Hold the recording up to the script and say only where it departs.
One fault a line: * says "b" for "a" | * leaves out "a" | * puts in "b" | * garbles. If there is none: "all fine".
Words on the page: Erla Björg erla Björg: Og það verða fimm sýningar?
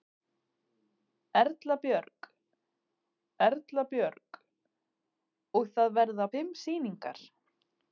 all fine